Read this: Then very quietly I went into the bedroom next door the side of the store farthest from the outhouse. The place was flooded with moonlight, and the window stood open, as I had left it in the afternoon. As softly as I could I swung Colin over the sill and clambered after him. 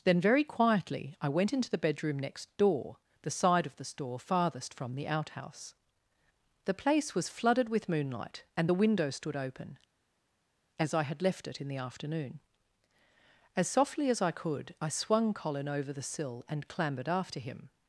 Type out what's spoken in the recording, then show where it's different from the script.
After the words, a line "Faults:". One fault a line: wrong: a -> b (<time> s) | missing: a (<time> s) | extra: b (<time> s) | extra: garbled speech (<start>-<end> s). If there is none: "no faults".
Then very quietly I went into the bedroom next door the side of the store farthest from the outhouse. The place was flooded with moonlight, and the window stood open, as I had left it in the afternoon. As softly as I could I swung Colin over the sill and clambered after him.
Faults:
no faults